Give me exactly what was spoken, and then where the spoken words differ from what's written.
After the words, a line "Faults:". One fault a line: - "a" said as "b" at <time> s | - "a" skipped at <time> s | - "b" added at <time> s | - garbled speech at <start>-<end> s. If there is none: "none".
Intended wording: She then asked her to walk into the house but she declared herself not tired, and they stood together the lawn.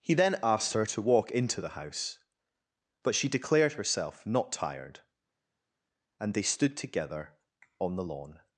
He then asked her to walk into the house but she declared herself not tired, and they stood together on the lawn.
Faults:
- "She" said as "He" at 0.0 s
- "on" added at 7.8 s